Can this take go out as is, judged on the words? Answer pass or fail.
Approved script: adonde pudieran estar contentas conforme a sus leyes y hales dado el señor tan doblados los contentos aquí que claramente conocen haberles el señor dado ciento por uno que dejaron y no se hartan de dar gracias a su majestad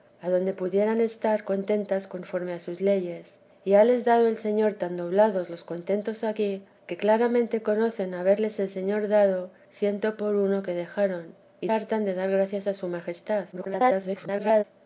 fail